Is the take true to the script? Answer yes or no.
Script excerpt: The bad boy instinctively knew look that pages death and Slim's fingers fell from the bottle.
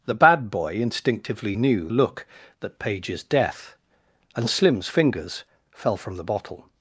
yes